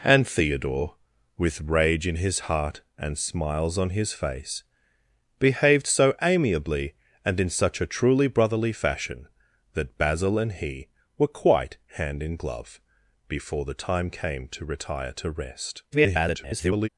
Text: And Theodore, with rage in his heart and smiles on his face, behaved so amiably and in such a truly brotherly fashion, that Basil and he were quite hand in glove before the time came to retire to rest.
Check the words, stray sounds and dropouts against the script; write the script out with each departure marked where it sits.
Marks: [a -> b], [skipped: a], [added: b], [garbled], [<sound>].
And Theodore, with rage in his heart and smiles on his face, behaved so amiably and in such a truly brotherly fashion, that Basil and he were quite hand in glove before the time came to retire to rest. [garbled]